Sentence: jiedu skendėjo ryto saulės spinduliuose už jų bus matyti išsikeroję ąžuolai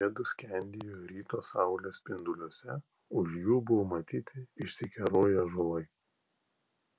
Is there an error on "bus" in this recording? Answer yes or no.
yes